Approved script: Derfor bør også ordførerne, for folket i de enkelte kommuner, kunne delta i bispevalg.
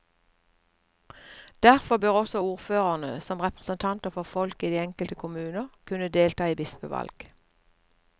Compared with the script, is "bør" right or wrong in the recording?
right